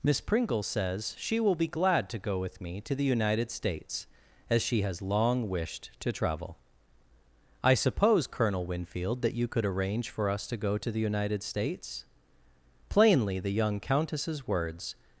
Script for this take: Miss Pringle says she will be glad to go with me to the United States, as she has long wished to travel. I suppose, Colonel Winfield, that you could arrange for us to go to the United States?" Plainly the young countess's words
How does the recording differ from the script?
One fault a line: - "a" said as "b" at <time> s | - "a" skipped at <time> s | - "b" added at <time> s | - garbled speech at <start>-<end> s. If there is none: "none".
none